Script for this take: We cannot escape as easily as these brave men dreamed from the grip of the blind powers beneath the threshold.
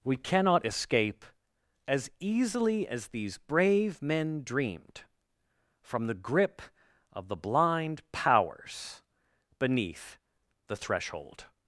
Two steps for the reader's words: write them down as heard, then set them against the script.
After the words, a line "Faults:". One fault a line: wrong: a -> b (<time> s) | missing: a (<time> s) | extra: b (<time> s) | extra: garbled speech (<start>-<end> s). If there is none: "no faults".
We cannot escape as easily as these brave men dreamed from the grip of the blind powers beneath the threshold.
Faults:
no faults